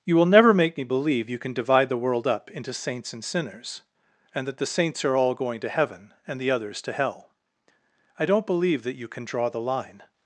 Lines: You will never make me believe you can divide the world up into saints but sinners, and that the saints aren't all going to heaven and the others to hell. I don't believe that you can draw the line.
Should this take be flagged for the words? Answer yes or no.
yes